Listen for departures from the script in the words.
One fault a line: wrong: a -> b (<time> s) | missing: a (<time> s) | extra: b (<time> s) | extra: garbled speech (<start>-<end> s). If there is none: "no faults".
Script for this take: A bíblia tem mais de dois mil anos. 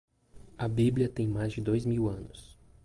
no faults